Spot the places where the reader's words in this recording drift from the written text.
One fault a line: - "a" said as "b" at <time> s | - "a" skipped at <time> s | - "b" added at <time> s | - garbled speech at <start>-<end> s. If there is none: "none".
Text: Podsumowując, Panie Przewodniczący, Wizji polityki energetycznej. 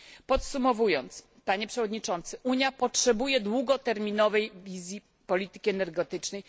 - "Unia potrzebuje długoterminowej" added at 2.4 s